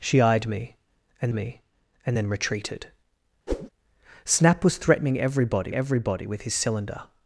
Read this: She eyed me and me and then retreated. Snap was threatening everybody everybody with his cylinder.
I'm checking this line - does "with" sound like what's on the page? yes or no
yes